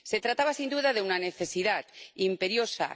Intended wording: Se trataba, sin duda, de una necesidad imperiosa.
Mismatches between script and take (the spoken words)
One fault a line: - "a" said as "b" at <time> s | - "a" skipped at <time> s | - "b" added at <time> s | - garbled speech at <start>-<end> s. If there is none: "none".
none